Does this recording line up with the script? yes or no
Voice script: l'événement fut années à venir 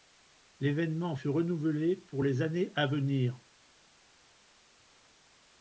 no